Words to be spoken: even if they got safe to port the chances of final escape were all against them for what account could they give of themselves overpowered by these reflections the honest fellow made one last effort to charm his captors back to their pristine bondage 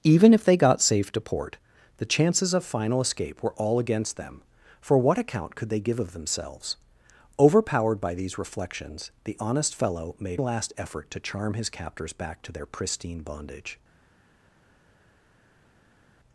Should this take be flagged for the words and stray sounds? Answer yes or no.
yes